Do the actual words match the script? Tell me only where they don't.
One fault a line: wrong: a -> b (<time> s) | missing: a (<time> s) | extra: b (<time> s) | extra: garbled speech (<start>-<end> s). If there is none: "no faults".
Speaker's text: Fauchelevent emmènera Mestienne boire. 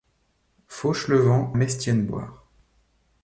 missing: emmènera (1.5 s)